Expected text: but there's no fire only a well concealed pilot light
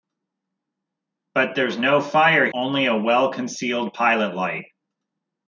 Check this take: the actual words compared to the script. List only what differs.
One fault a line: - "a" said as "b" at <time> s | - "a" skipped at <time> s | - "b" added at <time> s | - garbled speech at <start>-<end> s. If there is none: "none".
none